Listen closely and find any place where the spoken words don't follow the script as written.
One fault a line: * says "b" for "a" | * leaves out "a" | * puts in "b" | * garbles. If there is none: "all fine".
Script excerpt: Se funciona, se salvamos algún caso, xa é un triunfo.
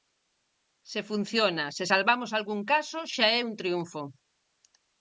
all fine